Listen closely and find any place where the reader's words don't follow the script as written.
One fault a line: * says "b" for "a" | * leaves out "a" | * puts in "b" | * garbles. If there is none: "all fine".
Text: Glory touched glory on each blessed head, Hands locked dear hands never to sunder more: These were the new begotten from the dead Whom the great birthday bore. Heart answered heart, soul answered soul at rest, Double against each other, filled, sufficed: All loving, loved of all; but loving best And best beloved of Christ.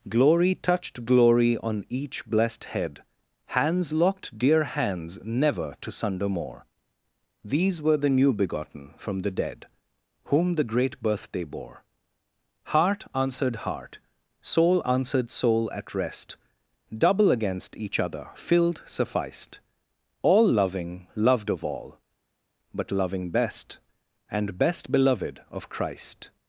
all fine